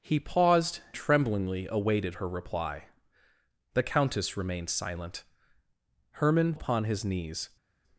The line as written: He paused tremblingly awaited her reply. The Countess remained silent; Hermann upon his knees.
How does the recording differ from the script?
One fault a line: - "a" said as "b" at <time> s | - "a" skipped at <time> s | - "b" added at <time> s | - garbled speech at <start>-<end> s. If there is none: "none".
none